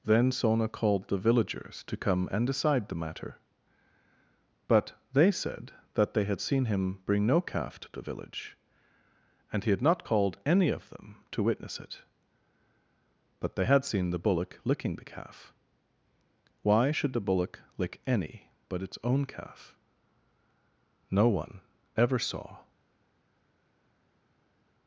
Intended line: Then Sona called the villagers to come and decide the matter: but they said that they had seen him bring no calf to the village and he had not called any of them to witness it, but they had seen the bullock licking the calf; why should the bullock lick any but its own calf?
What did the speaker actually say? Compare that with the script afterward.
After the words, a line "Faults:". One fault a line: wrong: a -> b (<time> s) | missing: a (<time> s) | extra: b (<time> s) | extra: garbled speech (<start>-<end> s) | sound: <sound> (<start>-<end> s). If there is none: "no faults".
Then Sona called the villagers to come and decide the matter: but they said that they had seen him bring no calf to the village and he had not called any of them to witness it, but they had seen the bullock licking the calf; why should the bullock lick any but its own calf? No one ever saw
Faults:
extra: No one ever saw (21.1 s)